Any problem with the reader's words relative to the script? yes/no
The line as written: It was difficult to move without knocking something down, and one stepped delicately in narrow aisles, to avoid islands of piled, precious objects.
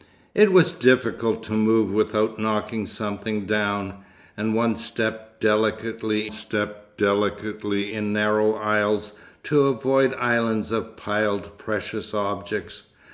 yes